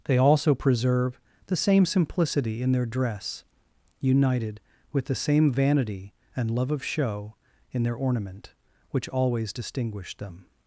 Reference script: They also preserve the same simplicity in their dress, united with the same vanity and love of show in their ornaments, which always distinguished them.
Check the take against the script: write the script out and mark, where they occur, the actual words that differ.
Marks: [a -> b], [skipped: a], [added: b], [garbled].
They also preserve the same simplicity in their dress, united with the same vanity and love of show in their [ornaments, -> ornament] which always distinguished them.